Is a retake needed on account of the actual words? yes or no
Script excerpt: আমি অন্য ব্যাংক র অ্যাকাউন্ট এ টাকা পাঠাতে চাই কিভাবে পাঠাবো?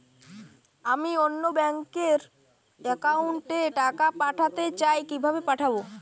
no